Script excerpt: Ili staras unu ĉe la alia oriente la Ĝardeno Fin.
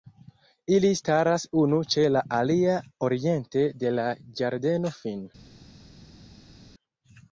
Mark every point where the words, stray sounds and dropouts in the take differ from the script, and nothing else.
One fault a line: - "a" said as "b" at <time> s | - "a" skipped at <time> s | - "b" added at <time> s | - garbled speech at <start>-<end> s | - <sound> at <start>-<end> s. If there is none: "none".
- "de" added at 3.8 s